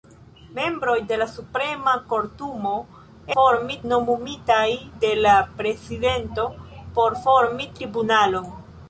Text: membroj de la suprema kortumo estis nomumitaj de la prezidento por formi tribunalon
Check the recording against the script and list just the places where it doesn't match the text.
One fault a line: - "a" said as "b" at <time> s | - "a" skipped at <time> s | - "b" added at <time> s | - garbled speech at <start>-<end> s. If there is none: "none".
- "estis" said as "formi" at 3.4 s